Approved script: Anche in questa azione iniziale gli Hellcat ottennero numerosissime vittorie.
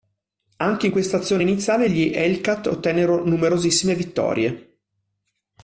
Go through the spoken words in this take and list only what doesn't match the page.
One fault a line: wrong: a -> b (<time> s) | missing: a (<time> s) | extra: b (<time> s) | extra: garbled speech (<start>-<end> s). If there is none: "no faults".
no faults